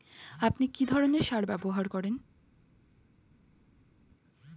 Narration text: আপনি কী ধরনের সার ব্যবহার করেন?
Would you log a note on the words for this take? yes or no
no